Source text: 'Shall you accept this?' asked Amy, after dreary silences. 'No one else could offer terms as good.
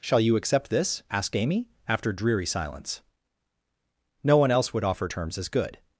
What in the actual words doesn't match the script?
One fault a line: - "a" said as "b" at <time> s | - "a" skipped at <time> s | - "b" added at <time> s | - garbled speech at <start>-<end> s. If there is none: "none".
- "silences" said as "silence" at 2.5 s
- "could" said as "would" at 4.7 s